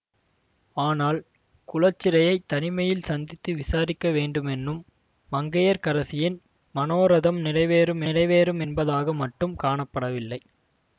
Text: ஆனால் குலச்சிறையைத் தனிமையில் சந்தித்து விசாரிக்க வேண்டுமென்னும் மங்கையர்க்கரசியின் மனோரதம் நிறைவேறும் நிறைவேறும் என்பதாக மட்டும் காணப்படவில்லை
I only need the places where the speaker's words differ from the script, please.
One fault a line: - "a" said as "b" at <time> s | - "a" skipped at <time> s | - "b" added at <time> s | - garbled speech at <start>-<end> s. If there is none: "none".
none